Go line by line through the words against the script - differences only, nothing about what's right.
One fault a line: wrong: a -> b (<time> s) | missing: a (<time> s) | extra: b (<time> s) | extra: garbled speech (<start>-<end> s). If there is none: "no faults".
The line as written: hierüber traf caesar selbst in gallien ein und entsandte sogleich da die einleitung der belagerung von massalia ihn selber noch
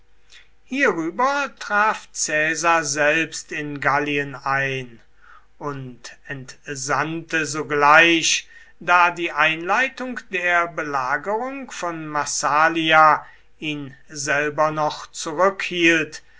no faults